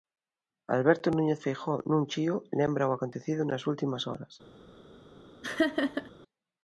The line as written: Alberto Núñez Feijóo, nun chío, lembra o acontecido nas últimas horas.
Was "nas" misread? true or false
false